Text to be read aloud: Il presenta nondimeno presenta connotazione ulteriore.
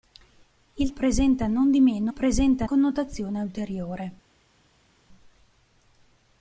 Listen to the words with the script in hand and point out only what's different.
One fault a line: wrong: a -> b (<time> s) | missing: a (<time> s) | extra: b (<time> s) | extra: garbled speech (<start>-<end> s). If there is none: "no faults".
no faults